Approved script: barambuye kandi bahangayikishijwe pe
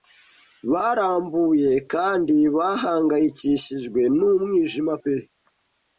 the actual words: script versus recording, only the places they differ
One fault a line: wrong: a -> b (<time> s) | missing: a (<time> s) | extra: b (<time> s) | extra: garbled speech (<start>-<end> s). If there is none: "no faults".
extra: n'umwijima (4.2 s)